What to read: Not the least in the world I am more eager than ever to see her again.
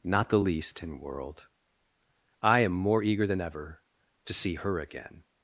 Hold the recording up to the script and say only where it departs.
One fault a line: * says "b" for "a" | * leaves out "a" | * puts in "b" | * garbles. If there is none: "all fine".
* leaves out "the"